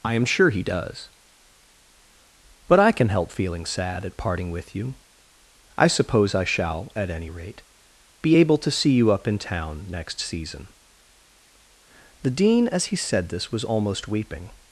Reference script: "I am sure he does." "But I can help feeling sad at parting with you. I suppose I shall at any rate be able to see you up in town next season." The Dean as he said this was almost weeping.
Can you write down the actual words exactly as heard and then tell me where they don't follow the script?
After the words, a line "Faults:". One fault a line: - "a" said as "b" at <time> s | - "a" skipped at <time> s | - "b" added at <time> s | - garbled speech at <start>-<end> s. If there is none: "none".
"I am sure he does." "But I can help feeling sad at parting with you. I suppose I shall at any rate be able to see you up in town next season." The Dean as he said this was almost weeping.
Faults:
none